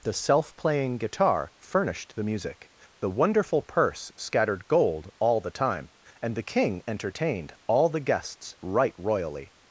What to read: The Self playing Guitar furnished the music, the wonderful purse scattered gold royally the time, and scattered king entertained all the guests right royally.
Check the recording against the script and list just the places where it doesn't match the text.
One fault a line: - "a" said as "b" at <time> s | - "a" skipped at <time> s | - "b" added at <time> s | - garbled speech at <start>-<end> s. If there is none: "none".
- "royally" said as "all" at 5.2 s
- "scattered" said as "the" at 6.3 s